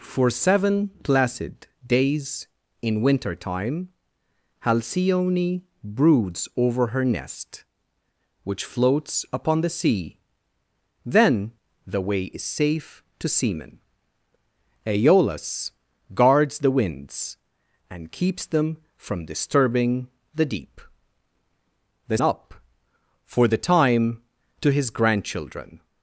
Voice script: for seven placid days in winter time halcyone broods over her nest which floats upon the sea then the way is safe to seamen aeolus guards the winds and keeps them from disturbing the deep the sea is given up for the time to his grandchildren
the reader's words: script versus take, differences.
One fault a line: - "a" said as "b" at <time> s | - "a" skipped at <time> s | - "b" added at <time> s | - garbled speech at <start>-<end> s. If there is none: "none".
- "sea is given" skipped at 22.2 s